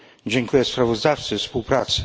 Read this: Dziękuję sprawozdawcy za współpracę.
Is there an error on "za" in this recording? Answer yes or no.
yes